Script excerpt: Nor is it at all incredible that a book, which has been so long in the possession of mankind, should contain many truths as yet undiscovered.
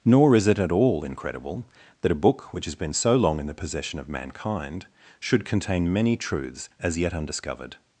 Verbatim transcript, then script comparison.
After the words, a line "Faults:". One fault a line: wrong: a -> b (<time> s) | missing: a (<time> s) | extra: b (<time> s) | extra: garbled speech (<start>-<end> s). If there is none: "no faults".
Nor is it at all incredible that a book, which has been so long in the possession of mankind, should contain many truths as yet undiscovered.
Faults:
no faults